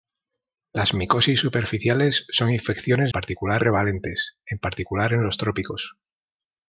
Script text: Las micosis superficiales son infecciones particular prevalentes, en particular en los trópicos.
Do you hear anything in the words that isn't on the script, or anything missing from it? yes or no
no